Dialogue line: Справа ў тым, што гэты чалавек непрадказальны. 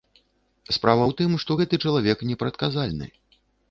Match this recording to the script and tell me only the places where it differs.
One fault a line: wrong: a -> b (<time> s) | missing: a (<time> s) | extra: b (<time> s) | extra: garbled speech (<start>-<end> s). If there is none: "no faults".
no faults